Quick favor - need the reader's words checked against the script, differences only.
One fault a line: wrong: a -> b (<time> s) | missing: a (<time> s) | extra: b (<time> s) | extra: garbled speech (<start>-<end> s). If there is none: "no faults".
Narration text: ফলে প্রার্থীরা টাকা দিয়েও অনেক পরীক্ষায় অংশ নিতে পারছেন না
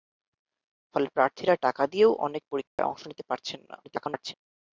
extra: garbled speech (3.8-4.3 s)